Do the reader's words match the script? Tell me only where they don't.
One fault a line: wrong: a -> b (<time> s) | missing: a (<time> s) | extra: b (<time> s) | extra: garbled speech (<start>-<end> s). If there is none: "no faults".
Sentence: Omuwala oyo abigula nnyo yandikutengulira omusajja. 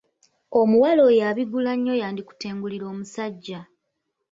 no faults